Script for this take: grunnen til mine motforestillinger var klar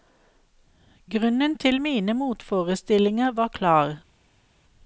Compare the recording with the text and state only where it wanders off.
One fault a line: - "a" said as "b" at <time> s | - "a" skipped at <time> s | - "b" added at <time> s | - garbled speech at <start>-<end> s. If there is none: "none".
none